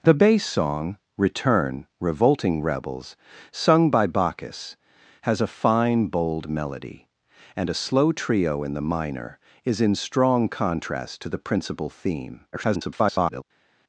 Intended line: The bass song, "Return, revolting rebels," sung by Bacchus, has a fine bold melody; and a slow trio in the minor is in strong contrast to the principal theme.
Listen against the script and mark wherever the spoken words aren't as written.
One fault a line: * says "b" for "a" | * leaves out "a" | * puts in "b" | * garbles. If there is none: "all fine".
* garbles